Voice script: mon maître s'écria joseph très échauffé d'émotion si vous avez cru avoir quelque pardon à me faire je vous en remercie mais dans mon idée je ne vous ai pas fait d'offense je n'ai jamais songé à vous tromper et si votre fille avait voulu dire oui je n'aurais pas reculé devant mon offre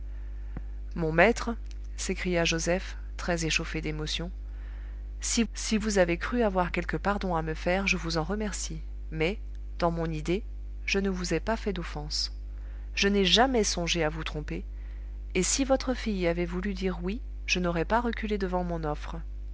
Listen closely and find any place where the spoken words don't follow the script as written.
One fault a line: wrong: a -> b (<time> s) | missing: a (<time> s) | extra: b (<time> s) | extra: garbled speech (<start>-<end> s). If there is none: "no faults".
extra: si (5.5 s)